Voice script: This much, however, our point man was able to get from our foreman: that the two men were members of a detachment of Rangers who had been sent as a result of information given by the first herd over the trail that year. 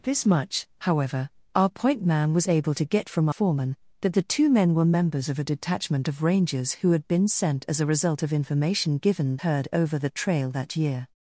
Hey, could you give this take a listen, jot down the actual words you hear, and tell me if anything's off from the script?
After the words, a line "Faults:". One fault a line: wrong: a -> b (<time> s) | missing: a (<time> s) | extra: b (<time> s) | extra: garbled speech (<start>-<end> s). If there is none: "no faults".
This much, however, our point man was able to get from foreman: that the two men were members of a detachment of Rangers who had been sent as a result of information given herd over the trail that year.
Faults:
missing: our (3.3 s)
missing: by the first (9.4 s)